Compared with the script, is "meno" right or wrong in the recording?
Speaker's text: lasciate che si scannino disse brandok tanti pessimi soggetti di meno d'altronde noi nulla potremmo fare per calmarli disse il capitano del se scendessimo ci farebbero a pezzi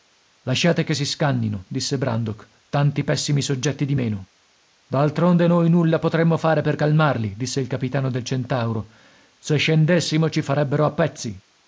right